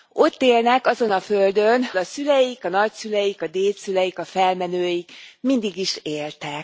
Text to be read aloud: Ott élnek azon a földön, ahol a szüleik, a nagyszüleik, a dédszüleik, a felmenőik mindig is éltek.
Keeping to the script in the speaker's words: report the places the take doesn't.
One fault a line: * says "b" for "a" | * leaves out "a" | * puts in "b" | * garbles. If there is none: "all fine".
* leaves out "ahol"